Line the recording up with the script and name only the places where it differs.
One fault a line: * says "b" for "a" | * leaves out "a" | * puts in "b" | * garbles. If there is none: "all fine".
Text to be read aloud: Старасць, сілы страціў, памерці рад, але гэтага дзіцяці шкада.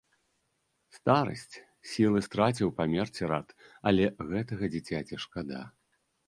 all fine